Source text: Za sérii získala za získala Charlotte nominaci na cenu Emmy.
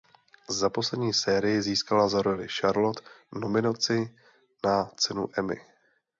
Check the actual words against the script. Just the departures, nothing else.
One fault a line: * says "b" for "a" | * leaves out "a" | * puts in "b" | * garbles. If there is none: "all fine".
* puts in "poslední"
* says "roli" for "získala"